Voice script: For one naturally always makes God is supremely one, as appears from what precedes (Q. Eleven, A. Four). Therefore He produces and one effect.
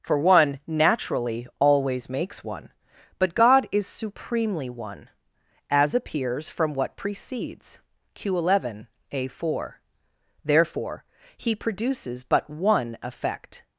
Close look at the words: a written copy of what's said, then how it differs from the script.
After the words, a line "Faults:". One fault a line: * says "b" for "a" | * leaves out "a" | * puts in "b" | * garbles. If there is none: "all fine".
For one naturally always makes one. But God is supremely one, as appears from what precedes (Q. Eleven, A. Four). Therefore He produces but one effect.
Faults:
* puts in "one But"
* says "but" for "and"